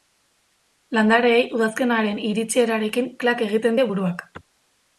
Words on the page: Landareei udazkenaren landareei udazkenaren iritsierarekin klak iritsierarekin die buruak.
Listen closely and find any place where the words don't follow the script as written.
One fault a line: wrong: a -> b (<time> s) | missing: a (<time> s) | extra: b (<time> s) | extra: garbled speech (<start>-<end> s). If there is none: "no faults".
missing: landareei udazkenaren (2.2 s)
wrong: iritsierarekin -> egiten (3.5 s)